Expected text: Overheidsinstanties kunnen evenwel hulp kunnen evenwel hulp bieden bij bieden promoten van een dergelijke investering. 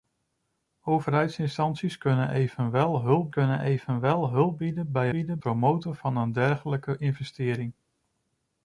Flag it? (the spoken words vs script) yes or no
no